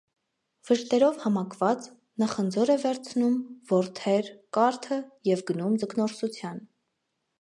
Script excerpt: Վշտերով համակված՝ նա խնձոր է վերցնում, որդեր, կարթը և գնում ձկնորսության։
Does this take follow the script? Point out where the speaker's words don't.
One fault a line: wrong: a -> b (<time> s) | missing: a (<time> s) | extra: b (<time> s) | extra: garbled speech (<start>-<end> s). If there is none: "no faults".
no faults